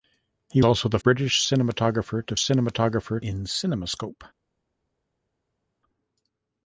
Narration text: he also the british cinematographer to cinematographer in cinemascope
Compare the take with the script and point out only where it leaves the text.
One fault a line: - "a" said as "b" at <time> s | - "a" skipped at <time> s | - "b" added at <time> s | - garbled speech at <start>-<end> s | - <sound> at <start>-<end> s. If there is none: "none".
none